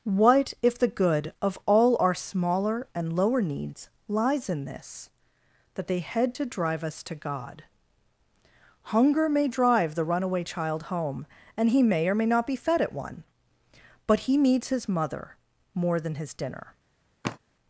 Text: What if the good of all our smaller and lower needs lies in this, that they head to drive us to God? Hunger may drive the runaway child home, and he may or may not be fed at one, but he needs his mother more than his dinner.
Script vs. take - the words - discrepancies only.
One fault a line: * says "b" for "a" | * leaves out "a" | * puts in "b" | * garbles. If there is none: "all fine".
all fine